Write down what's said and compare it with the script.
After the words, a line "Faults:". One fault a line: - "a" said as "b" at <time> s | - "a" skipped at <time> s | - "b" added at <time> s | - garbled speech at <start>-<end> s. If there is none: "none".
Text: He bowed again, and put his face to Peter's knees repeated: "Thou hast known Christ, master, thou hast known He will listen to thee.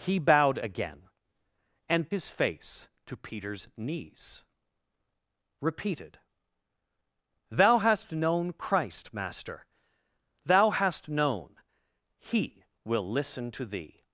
He bowed again, and his face to Peter's knees repeated: "Thou hast known Christ, master, thou hast known He will listen to thee.
Faults:
- "put" skipped at 2.1 s